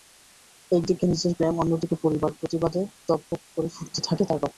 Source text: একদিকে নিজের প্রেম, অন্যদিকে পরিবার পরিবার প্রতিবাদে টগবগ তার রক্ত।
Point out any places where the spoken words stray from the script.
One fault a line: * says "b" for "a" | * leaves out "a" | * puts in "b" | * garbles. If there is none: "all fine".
* leaves out "পরিবার"
* puts in "করে ফুটতে থাকে"